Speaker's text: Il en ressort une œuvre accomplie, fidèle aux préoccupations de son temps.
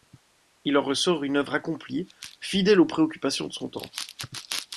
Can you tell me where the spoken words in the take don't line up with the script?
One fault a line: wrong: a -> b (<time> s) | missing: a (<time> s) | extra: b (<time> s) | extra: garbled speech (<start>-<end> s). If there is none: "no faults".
no faults